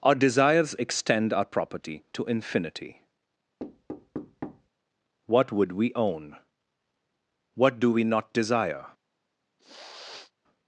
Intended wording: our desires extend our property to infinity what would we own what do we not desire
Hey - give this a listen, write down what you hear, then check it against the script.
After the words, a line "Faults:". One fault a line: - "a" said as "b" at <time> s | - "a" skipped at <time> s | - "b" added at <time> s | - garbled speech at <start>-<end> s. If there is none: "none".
our desires extend our property to infinity what would we own what do we not desire
Faults:
none